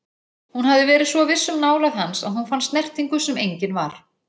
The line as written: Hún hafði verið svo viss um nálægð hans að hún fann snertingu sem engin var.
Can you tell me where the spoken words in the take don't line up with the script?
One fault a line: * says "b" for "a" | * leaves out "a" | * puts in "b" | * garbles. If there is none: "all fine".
all fine